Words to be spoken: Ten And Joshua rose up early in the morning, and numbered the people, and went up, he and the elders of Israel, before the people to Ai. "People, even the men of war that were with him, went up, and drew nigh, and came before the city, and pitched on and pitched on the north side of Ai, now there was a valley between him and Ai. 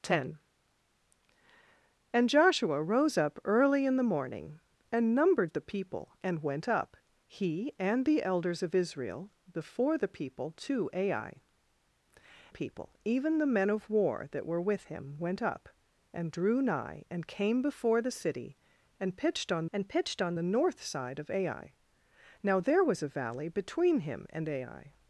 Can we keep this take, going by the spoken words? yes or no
yes